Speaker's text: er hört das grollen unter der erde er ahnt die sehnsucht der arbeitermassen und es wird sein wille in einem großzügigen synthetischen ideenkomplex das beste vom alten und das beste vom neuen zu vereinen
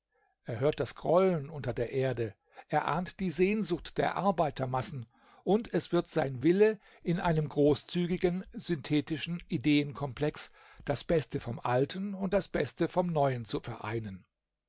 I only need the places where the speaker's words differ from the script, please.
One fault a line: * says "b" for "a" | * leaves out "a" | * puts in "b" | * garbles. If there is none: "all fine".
all fine